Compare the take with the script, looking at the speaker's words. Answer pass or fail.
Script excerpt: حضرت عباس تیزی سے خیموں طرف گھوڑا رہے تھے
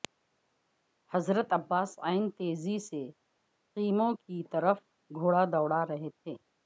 fail